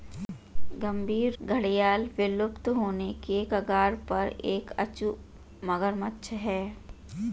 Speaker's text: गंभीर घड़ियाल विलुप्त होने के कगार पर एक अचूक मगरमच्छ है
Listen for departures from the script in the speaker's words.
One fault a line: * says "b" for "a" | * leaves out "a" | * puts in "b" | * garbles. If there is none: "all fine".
all fine